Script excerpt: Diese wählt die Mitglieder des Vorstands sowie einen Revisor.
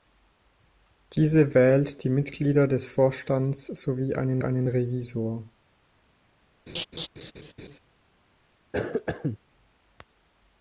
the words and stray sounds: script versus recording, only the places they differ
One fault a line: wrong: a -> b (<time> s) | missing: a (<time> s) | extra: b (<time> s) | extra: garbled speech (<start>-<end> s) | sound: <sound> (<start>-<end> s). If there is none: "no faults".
extra: einen (4.4 s)
sound: laugh (6.7-7.8 s)
sound: cough (8.7-9.4 s)